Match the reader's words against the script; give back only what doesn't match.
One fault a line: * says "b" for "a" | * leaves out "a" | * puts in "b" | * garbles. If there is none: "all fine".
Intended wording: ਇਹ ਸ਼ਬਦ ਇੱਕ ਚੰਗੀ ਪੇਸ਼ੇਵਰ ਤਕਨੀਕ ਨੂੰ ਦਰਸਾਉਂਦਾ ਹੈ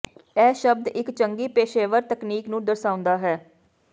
all fine